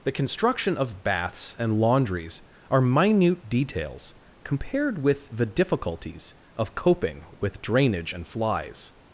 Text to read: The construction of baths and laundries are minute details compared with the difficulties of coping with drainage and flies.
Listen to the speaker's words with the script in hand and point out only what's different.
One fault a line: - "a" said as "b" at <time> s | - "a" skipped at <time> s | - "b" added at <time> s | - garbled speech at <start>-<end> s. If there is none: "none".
none